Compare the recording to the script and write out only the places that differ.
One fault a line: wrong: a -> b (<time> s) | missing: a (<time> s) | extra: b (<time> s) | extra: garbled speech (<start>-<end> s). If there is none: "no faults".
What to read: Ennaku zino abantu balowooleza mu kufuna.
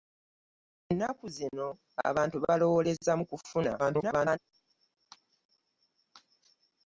extra: garbled speech (3.8-4.4 s)